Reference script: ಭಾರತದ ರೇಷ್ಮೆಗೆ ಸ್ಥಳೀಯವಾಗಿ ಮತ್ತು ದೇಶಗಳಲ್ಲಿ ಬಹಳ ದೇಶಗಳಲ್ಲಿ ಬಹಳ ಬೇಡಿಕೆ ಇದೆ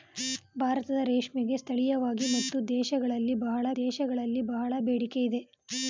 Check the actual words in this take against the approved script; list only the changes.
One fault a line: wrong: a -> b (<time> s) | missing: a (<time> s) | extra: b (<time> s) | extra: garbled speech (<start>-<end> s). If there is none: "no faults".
no faults